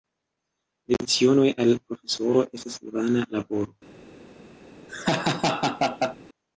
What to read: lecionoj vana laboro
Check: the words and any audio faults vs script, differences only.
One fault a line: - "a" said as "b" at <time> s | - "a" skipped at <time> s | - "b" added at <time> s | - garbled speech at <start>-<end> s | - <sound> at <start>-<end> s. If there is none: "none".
- "al profesoro estas" added at 1.6 s
- laugh at 4.9-6.2 s